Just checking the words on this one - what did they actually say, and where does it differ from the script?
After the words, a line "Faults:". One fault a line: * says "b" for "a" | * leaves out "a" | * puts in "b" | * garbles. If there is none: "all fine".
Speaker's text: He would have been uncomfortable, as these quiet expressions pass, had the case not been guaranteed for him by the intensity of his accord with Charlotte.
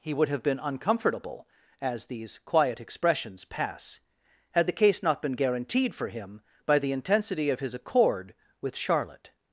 He would have been uncomfortable, as these quiet expressions pass, had the case not been guaranteed for him by the intensity of his accord with Charlotte.
Faults:
all fine